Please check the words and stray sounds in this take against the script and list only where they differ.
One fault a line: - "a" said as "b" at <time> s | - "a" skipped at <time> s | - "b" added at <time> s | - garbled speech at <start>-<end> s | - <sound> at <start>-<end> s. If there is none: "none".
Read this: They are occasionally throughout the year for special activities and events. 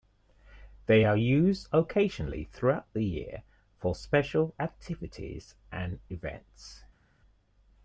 - "used" added at 1.2 s